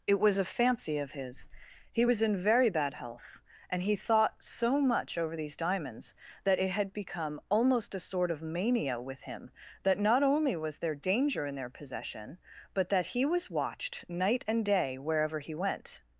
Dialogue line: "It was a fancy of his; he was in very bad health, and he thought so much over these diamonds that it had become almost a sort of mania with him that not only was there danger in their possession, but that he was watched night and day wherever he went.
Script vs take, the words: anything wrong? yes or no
no